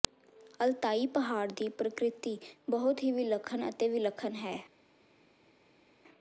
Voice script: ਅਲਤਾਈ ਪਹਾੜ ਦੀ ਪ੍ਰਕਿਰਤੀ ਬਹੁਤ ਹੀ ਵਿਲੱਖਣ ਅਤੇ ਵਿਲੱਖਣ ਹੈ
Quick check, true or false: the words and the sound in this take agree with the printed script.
true